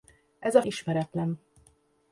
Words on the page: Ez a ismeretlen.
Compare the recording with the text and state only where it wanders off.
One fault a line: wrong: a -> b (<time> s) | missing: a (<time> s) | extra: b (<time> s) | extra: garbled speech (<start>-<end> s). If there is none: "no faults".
no faults